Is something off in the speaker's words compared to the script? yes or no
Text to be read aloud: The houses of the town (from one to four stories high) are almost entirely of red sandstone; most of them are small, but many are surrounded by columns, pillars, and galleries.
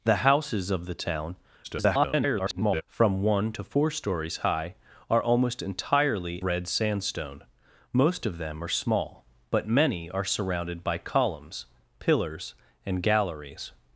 yes